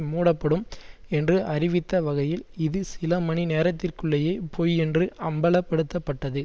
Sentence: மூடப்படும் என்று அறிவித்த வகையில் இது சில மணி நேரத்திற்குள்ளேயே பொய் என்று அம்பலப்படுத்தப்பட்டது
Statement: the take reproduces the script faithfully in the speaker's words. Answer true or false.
true